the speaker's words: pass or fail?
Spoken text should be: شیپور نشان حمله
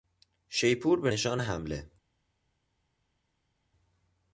fail